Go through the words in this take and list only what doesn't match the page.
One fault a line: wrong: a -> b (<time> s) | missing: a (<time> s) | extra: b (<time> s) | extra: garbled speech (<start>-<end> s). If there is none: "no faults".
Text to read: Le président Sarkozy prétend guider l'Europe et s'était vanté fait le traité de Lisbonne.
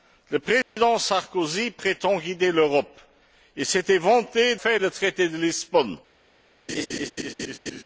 no faults